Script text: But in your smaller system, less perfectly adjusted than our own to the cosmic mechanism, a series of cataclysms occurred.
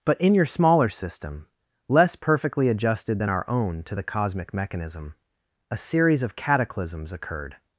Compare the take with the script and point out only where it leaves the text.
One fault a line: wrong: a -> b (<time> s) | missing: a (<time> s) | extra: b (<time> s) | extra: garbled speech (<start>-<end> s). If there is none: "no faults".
no faults